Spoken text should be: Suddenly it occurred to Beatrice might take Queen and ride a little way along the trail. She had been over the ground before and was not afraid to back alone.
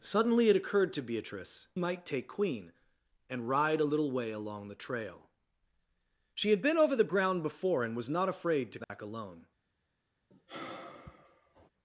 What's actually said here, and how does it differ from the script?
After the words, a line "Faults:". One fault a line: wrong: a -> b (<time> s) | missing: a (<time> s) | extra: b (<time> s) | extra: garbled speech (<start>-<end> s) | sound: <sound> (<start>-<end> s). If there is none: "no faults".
Suddenly it occurred to Beatrice might take Queen and ride a little way along the trail. She had been over the ground before and was not afraid to back alone.
Faults:
sound: dropout (8.8-8.9 s)
sound: sigh (10.3-11.7 s)